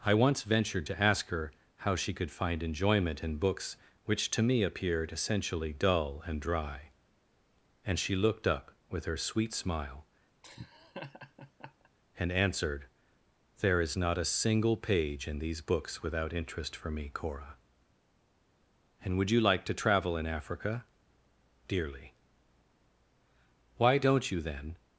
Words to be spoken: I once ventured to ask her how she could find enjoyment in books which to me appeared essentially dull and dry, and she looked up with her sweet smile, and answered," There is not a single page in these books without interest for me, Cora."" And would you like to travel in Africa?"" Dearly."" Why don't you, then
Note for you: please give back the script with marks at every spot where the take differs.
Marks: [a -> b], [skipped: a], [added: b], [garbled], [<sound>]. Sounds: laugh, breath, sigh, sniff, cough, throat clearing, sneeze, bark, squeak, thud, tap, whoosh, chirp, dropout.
I once ventured to ask her how she could find enjoyment in books which to me appeared essentially dull and dry, and she looked up with her sweet smile, [laugh] and answered," There is not a single page in these books without interest for me, Cora."" And would you like to travel in Africa?"" Dearly."" Why don't you, then